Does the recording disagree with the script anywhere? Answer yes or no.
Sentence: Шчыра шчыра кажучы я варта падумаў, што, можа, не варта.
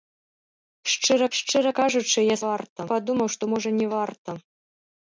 no